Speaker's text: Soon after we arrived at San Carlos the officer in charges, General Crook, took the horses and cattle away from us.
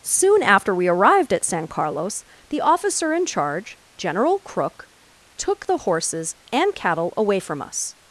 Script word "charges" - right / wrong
wrong